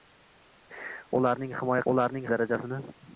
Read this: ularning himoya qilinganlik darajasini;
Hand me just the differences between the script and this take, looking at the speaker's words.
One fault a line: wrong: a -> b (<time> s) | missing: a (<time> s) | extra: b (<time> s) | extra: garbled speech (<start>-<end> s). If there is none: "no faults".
wrong: qilinganlik -> ularning (1.9 s)